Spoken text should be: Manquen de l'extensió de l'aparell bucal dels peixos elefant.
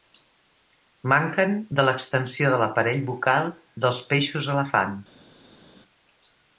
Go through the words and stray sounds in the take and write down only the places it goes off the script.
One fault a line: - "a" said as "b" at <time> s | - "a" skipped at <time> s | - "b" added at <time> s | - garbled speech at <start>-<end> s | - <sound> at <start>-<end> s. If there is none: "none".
none